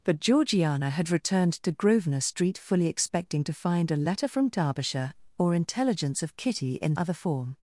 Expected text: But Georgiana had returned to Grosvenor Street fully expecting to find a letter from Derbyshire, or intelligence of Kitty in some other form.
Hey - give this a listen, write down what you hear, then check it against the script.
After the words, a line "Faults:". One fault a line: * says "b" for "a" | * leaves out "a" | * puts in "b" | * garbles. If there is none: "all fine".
But Georgiana had returned to Grosvenor Street fully expecting to find a letter from Derbyshire, or intelligence of Kitty in other form.
Faults:
* leaves out "some"